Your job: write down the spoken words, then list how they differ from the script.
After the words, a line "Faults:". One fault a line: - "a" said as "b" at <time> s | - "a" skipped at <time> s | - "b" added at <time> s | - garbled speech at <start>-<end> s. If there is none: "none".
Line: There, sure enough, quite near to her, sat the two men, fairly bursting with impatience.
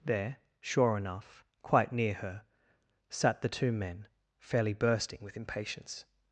There, sure enough, quite near her, sat the two men, fairly bursting with impatience.
Faults:
- "to" skipped at 2.1 s